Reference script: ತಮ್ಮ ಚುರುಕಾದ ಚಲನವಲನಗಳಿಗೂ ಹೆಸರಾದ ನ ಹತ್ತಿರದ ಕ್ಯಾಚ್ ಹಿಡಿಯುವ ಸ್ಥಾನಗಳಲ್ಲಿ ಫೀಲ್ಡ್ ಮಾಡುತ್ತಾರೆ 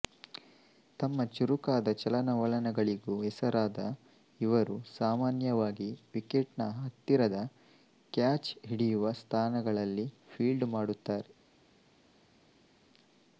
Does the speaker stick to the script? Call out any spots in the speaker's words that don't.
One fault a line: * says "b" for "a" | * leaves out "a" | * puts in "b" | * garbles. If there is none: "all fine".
* puts in "ಇವರು ಸಾಮಾನ್ಯವಾಗಿ ವಿಕೆಟ್"